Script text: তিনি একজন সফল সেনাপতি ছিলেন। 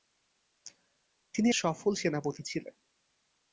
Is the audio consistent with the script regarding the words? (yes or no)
no